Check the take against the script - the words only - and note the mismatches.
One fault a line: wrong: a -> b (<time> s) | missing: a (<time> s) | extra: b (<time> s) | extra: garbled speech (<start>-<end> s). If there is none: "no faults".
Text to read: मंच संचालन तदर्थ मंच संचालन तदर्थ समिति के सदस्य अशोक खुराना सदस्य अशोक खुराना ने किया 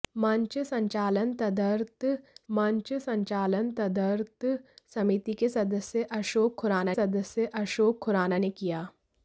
no faults